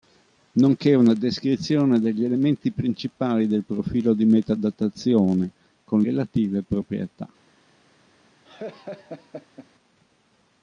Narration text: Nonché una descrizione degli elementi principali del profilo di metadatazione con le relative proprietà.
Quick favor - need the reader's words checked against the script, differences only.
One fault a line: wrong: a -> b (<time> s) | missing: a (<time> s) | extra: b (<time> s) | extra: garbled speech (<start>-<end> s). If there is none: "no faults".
missing: le (6.0 s)